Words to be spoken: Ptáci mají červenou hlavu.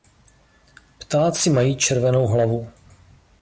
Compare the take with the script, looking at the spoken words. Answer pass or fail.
pass